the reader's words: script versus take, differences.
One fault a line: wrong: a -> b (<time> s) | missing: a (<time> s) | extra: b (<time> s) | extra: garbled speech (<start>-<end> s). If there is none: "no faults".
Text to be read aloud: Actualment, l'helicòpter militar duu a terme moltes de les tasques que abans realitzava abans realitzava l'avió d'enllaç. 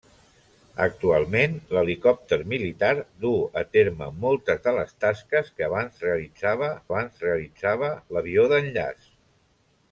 no faults